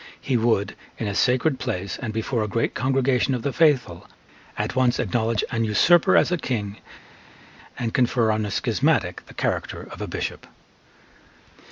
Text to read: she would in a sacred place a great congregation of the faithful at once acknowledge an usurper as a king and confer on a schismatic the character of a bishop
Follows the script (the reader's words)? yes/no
no